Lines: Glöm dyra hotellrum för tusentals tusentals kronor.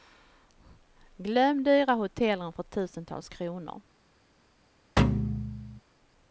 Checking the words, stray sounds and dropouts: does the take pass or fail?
fail